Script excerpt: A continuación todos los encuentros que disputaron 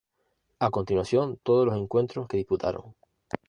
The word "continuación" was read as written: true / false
true